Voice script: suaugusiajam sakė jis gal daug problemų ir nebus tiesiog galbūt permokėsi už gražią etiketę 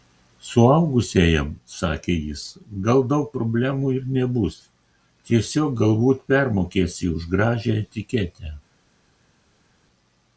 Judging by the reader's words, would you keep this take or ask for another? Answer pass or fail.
pass